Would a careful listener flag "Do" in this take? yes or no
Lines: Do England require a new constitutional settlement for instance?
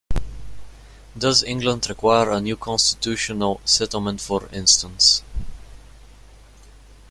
yes